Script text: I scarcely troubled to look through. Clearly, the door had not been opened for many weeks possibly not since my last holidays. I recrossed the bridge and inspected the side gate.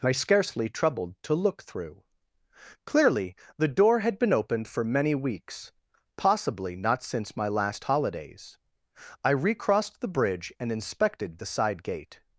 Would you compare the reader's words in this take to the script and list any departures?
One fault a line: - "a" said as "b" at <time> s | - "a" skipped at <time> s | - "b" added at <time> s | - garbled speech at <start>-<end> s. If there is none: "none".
- "not" skipped at 4.2 s